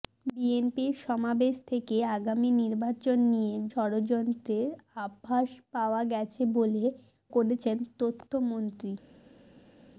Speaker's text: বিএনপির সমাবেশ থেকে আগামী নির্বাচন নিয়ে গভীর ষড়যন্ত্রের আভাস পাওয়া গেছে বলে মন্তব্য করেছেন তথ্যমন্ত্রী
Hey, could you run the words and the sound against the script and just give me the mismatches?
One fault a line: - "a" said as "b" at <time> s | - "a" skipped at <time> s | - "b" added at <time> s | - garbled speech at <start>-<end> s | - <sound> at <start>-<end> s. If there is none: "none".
- "গভীর" skipped at 3.5 s
- "মন্তব্য" skipped at 6.8 s